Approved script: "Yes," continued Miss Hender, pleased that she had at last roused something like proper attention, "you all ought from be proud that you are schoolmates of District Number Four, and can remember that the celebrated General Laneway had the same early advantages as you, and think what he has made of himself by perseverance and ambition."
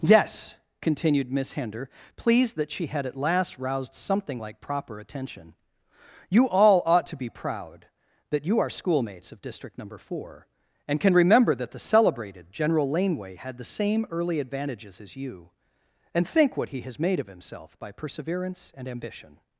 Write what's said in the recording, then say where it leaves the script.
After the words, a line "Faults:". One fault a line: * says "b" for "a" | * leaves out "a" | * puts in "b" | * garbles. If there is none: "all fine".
"Yes," continued Miss Hender, pleased that she had at last roused something like proper attention, "you all ought to be proud that you are schoolmates of District Number Four, and can remember that the celebrated General Laneway had the same early advantages as you, and think what he has made of himself by perseverance and ambition."
Faults:
* says "to" for "from"